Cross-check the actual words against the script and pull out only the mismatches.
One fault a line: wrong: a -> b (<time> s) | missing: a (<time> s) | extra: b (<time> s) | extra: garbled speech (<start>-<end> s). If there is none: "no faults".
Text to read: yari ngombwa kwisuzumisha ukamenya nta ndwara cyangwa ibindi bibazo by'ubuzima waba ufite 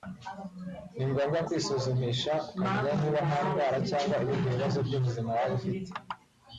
wrong: yari -> ni (0.9 s)
extra: niba (3.0 s)